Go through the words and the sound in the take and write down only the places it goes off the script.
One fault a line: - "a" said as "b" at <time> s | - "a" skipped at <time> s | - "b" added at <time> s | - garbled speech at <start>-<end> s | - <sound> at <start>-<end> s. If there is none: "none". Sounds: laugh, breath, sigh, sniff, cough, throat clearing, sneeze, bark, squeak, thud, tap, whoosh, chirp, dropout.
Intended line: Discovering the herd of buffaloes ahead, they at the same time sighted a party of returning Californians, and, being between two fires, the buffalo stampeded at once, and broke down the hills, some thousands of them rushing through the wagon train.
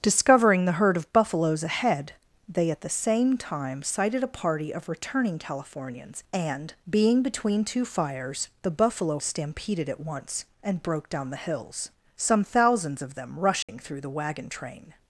- dropout at 13.6-13.7 s